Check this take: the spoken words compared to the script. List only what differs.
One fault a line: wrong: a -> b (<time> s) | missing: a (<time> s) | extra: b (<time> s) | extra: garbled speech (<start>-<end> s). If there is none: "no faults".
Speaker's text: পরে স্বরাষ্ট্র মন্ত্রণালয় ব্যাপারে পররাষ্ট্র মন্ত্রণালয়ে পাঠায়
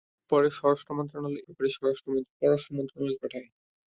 no faults